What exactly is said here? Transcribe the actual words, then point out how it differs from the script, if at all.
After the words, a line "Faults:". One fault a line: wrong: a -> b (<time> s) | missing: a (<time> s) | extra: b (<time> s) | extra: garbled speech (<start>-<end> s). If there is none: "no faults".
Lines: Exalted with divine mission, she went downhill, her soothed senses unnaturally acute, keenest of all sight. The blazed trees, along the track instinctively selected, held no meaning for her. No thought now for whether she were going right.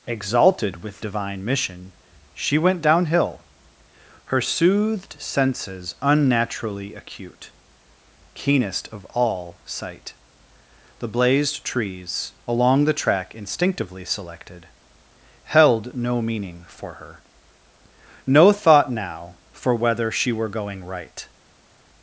Exalted with divine mission, she went downhill, her soothed senses unnaturally acute, keenest of all sight. The blazed trees, along the track instinctively selected, held no meaning for her. No thought now for whether she were going right.
Faults:
no faults